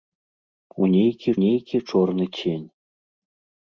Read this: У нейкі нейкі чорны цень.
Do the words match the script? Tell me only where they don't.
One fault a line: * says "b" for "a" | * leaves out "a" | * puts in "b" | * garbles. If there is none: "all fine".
all fine